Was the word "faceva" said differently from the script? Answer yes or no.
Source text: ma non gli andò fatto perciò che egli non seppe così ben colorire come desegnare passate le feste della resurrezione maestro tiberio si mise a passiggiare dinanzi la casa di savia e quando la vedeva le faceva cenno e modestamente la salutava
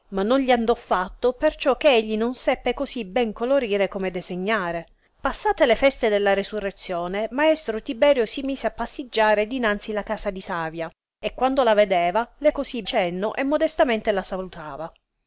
yes